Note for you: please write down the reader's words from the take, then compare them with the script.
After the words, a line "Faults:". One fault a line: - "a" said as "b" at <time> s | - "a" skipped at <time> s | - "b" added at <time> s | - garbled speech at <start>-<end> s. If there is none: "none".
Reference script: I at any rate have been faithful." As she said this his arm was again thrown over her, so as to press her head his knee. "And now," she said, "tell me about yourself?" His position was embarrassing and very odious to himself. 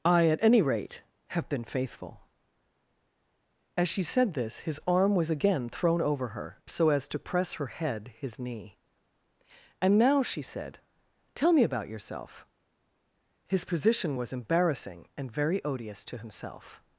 I at any rate have been faithful." As she said this his arm was again thrown over her, so as to press her head his knee. "And now," she said, "tell me about yourself?" His position was embarrassing and very odious to himself.
Faults:
none